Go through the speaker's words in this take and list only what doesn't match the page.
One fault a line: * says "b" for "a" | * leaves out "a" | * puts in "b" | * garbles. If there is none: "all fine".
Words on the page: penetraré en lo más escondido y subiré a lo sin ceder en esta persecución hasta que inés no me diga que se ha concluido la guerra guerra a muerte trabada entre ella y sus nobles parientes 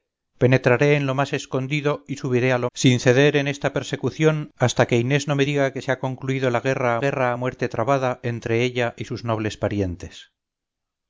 all fine